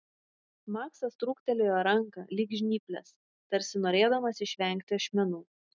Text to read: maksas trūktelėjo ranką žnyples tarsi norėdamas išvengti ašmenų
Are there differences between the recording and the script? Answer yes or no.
yes